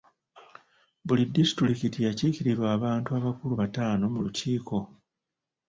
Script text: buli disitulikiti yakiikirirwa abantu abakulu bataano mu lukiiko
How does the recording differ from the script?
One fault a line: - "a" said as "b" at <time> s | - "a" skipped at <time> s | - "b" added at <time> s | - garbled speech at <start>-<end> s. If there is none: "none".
none